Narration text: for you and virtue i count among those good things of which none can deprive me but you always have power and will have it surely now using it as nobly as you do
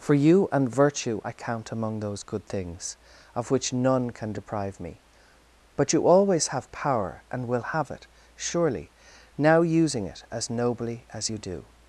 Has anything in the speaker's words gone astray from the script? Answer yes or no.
no